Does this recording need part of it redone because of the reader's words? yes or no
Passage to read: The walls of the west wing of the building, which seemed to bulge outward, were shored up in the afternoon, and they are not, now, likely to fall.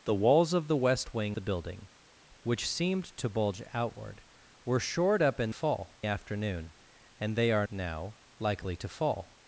yes